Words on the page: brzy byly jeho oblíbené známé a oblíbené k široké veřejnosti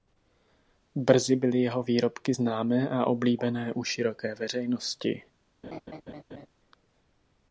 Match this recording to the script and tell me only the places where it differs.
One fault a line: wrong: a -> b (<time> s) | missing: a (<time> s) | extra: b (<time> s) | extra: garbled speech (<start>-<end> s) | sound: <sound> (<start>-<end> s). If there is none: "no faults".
wrong: oblíbené -> výrobky (1.8 s)
wrong: k -> u (3.7 s)
sound: laugh (5.6-6.5 s)